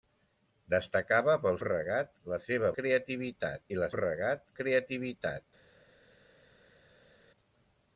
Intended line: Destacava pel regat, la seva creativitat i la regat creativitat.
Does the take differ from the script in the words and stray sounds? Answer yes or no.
no